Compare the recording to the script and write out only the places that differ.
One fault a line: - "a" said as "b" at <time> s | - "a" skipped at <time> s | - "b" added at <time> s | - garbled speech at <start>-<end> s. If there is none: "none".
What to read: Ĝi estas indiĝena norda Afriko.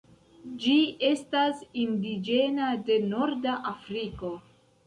- "de" added at 2.9 s